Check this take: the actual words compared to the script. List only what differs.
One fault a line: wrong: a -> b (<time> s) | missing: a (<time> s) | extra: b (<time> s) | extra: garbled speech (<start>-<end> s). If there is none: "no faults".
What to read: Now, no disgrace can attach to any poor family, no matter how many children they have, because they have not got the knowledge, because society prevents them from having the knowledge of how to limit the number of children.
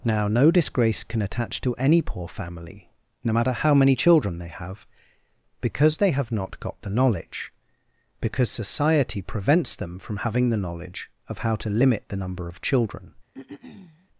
no faults